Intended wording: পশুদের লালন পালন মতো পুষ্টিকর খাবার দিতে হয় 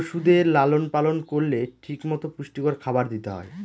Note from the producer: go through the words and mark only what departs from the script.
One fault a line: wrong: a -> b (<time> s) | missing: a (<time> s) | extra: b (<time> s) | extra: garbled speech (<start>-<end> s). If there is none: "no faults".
extra: করলে ঠিক (1.2 s)